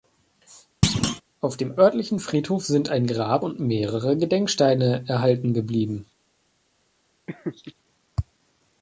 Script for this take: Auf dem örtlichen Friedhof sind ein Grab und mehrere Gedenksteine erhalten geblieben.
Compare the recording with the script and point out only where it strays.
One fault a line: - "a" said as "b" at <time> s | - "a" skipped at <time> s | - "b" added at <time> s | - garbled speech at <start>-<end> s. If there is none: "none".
none